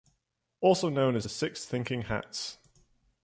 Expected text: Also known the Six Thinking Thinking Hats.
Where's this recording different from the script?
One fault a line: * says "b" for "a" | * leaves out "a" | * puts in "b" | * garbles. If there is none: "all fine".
* puts in "as"
* leaves out "Thinking"